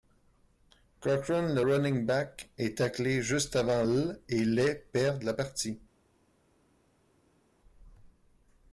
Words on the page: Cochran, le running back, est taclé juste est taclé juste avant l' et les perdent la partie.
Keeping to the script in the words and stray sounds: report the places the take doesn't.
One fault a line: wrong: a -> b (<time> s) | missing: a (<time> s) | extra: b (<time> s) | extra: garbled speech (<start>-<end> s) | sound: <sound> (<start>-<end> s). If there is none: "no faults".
missing: est taclé juste (3.6 s)